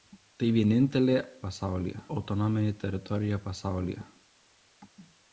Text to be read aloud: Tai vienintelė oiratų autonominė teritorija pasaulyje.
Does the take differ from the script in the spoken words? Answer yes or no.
yes